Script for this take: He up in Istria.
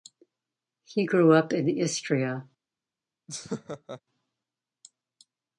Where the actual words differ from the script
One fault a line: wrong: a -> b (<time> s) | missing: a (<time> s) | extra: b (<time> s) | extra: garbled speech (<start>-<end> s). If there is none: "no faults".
extra: grew (1.0 s)